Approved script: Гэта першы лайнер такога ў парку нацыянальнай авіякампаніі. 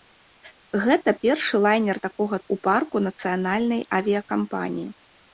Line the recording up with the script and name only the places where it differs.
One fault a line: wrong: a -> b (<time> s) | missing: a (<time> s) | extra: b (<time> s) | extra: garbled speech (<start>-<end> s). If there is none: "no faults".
no faults